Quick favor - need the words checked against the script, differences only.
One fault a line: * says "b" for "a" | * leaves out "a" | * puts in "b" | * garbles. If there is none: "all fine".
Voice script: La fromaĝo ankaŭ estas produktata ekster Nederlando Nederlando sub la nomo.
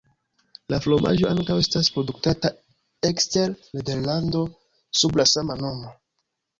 * leaves out "Nederlando"
* puts in "sama"